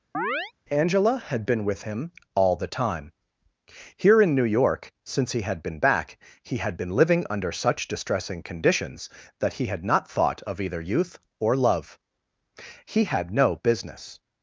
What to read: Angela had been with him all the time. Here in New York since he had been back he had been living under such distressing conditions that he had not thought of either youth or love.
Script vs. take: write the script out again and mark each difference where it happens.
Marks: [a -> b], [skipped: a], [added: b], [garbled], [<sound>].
[chirp] Angela had been with him all the time. Here in New York since he had been back he had been living under such distressing conditions that he had not thought of either youth or love. [added: He had no business]